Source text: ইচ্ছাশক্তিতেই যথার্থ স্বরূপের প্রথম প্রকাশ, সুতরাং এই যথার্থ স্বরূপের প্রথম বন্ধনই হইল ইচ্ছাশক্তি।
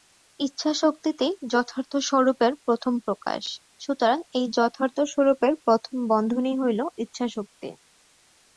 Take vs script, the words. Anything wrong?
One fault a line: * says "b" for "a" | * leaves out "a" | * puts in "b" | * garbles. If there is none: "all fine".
all fine